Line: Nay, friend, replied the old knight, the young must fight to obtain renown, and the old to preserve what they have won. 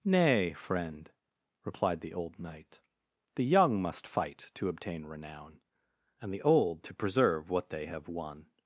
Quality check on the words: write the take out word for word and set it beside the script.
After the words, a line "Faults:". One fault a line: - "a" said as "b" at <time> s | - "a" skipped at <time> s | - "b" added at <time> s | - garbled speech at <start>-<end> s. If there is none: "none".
Nay, friend, replied the old knight, the young must fight to obtain renown, and the old to preserve what they have won.
Faults:
none